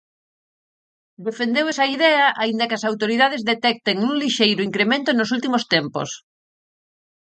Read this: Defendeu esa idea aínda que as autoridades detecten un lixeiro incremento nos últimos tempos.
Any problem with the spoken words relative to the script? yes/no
no